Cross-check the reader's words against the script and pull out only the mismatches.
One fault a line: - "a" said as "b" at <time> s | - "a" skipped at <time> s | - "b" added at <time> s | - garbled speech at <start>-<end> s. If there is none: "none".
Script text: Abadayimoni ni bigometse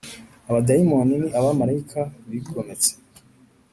- "abamarayika" added at 1.4 s